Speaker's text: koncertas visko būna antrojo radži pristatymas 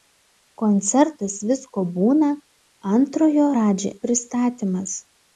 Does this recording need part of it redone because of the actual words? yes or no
no